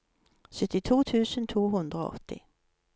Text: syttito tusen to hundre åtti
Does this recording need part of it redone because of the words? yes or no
yes